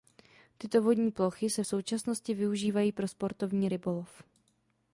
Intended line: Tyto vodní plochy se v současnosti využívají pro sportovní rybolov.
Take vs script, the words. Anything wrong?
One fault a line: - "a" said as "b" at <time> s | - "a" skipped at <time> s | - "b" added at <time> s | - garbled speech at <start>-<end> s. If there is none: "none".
none